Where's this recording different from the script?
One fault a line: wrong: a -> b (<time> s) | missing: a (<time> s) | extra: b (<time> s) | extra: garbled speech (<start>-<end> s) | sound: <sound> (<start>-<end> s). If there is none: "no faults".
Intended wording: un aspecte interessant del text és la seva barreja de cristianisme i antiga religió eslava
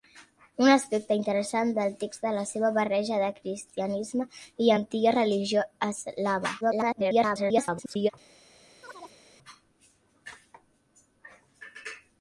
extra: garbled speech (6.6-8.1 s)
sound: chirp (8.8-9.2 s)